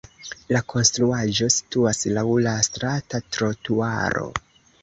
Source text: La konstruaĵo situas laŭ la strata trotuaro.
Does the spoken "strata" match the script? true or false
true